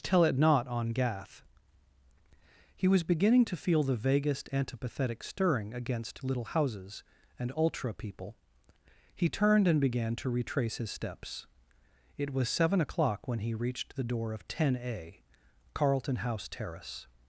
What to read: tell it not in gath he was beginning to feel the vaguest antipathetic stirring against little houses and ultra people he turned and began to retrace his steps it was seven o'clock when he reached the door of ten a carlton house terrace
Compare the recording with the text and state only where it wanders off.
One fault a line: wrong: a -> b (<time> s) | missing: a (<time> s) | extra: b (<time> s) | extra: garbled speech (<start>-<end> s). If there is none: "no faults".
wrong: in -> on (0.7 s)